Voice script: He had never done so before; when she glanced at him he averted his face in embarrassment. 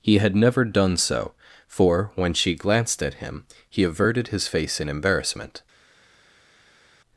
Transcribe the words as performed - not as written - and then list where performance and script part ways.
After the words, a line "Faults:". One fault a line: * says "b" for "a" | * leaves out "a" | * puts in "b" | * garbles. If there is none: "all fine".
He had never done so for; when she glanced at him he averted his face in embarrassment.
Faults:
* says "for" for "before"